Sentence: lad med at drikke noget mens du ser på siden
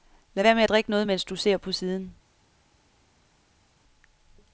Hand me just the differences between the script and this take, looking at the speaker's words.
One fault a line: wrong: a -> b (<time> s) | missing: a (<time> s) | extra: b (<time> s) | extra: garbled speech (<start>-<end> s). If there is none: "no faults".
extra: være (0.4 s)